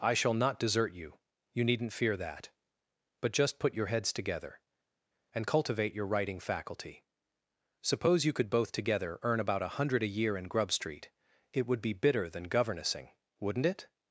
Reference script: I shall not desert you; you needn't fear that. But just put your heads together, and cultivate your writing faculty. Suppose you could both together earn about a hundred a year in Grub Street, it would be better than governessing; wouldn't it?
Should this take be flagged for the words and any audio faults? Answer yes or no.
yes